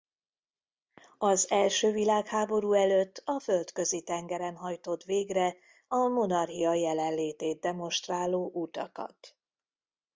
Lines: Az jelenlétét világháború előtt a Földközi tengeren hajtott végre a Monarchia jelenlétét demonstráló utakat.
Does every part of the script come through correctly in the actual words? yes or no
no